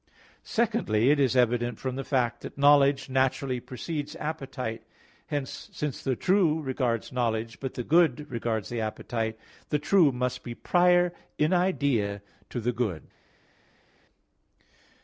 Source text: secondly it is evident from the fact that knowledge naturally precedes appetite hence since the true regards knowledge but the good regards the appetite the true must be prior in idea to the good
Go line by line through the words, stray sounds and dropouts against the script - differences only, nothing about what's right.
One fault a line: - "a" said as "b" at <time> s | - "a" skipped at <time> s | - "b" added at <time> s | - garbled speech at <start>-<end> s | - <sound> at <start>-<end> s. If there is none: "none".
none